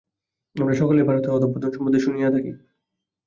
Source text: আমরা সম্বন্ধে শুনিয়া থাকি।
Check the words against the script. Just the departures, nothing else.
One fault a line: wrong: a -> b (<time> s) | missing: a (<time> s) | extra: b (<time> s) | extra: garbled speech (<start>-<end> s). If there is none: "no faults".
extra: সকলেই ভারতের অধঃপতন (0.7 s)